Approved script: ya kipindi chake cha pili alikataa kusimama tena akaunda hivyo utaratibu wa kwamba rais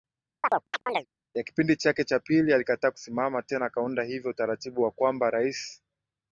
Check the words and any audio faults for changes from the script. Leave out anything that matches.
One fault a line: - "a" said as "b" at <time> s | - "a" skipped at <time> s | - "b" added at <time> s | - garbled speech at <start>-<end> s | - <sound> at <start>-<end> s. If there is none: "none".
- chirp at 0.4-1.1 s